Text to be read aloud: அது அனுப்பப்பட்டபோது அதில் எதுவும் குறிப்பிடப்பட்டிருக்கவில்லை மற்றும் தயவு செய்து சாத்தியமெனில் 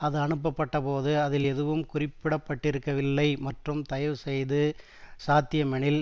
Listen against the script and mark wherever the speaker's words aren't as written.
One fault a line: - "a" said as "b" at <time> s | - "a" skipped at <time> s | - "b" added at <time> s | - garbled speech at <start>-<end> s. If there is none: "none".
none